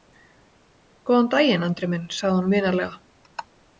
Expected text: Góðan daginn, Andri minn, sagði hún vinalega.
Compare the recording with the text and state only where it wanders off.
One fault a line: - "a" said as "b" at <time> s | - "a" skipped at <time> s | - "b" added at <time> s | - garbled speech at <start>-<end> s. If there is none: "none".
none